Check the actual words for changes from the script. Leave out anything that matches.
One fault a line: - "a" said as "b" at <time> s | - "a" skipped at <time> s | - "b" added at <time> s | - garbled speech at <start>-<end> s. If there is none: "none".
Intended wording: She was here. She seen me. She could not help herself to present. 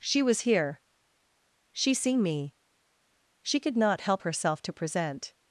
none